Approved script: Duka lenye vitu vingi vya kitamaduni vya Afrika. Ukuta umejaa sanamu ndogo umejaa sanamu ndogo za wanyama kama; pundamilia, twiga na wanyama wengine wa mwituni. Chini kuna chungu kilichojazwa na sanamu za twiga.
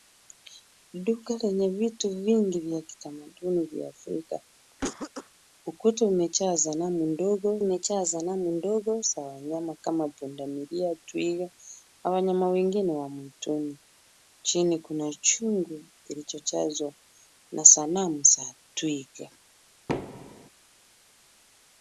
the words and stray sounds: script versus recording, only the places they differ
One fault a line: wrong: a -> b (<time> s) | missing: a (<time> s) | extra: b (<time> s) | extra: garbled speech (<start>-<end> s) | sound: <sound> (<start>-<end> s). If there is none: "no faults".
sound: cough (4.8-5.3 s)
sound: thud (19.9-20.5 s)